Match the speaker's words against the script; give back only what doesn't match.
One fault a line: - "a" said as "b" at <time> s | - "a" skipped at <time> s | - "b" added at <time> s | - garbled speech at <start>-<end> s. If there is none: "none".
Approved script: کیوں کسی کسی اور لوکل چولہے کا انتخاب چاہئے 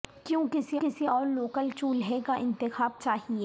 none